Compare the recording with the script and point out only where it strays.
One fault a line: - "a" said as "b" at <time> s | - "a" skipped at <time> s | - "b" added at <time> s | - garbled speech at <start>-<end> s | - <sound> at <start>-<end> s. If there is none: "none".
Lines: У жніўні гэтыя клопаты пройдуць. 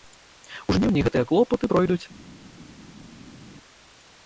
none